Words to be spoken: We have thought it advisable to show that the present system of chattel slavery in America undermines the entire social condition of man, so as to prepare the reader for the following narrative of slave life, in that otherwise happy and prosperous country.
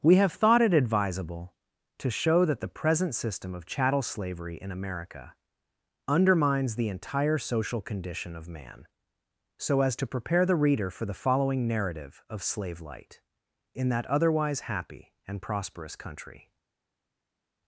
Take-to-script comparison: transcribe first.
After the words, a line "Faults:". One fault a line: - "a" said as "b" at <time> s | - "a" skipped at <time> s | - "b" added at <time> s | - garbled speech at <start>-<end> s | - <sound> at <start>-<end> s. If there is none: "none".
We have thought it advisable to show that the present system of chattel slavery in America undermines the entire social condition of man, so as to prepare the reader for the following narrative of slave light, in that otherwise happy and prosperous country.
Faults:
- "life" said as "light" at 12.8 s